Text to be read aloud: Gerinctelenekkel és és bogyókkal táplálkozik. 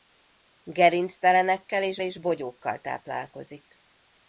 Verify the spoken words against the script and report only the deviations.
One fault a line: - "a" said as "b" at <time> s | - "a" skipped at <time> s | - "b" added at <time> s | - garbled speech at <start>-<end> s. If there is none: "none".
none